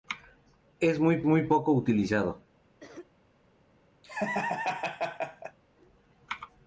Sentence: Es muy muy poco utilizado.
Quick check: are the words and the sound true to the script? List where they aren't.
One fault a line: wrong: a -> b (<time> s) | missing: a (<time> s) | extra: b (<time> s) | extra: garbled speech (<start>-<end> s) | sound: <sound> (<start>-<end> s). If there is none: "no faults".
sound: cough (2.8-3.1 s)
sound: laugh (4.0-5.6 s)